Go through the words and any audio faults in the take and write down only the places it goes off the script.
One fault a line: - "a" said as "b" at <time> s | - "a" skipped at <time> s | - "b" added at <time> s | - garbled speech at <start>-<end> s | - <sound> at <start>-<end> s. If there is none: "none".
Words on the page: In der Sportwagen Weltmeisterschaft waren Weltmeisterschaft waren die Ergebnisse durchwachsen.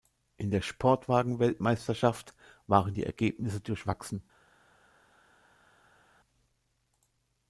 - "Weltmeisterschaft waren" skipped at 3.0 s